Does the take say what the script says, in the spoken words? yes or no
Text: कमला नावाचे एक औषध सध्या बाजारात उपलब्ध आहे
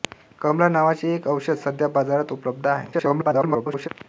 no